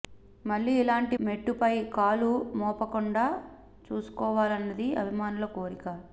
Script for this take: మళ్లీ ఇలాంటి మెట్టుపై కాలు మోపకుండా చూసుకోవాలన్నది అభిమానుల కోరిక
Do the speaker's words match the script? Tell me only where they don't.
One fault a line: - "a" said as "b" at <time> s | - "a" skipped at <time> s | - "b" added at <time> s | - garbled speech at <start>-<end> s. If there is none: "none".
none